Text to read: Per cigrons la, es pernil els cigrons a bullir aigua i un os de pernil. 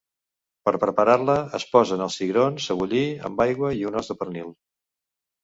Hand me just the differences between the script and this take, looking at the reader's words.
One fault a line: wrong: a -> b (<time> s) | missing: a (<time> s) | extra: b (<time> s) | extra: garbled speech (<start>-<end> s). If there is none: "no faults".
wrong: cigrons -> preparar (0.8 s)
wrong: pernil -> posen (1.7 s)
extra: amb (3.3 s)